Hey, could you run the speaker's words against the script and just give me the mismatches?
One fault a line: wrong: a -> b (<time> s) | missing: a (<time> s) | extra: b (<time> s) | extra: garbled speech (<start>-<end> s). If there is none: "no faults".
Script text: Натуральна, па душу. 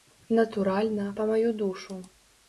extra: маю (1.3 s)